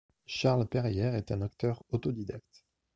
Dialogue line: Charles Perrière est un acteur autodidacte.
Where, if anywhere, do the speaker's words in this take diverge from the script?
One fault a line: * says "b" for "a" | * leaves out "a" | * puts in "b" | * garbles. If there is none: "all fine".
all fine